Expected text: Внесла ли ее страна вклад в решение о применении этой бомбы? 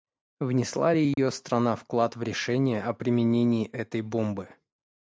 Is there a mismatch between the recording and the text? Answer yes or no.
no